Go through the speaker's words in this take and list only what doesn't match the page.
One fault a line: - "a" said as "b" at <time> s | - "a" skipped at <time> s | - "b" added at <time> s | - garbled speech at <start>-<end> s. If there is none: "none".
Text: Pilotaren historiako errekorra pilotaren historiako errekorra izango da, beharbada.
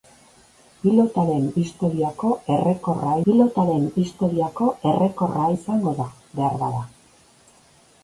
none